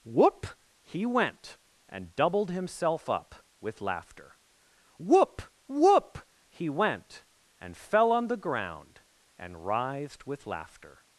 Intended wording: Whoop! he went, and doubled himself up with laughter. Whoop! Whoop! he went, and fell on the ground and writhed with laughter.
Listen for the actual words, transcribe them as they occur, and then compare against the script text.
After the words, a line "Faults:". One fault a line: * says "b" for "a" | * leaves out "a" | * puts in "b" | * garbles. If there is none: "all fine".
Whoop! he went, and doubled himself up with laughter. Whoop! Whoop! he went, and fell on the ground and writhed with laughter.
Faults:
all fine